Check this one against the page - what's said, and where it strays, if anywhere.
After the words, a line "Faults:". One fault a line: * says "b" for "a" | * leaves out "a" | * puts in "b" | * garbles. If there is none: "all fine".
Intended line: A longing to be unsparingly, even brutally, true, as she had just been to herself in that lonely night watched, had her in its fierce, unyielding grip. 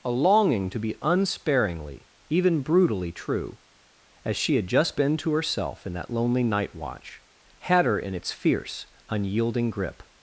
A longing to be unsparingly, even brutally, true, as she had just been to herself in that lonely night watch, had her in its fierce, unyielding grip.
Faults:
* says "watch" for "watched"